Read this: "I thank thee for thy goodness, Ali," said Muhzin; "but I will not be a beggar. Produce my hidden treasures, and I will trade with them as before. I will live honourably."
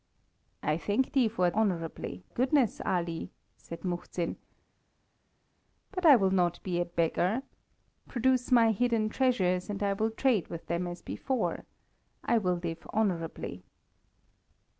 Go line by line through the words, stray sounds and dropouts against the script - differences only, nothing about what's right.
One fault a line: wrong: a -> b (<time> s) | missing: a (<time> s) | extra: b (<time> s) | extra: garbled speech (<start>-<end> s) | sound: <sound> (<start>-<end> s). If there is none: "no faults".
wrong: thy -> honourably (1.6 s)